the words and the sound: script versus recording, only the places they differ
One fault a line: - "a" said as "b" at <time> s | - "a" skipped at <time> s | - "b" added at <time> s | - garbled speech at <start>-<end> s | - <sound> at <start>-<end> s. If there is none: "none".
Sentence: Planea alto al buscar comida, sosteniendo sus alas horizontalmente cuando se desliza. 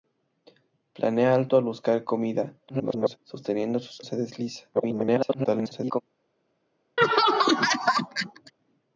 - garbled speech at 2.7-3.2 s
- "alas horizontalmente cuando" skipped at 4.0 s
- garbled speech at 4.7-6.0 s
- laugh at 7.0-8.5 s